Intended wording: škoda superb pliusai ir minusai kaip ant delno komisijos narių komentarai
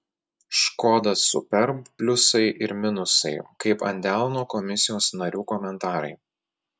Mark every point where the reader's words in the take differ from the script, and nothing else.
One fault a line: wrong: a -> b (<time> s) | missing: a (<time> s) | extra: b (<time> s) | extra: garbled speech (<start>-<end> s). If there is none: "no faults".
no faults